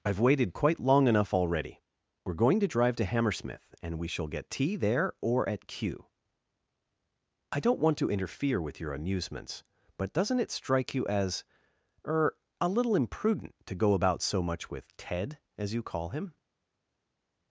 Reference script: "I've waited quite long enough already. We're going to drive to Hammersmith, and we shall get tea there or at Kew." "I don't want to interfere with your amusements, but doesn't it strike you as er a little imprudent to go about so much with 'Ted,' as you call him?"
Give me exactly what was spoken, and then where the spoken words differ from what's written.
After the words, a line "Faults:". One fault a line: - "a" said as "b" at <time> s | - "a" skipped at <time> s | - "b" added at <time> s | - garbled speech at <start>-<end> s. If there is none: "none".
"I've waited quite long enough already. We're going to drive to Hammersmith, and we shall get tea there or at Kew." "I don't want to interfere with your amusements, but doesn't it strike you as er a little imprudent to go about so much with 'Ted,' as you call him?"
Faults:
none